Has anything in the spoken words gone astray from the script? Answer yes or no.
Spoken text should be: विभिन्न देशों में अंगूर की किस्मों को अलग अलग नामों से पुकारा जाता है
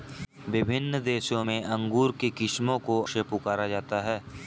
yes